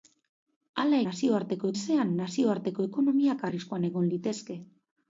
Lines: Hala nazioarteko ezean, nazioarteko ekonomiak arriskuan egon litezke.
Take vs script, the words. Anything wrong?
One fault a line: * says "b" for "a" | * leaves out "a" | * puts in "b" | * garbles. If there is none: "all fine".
all fine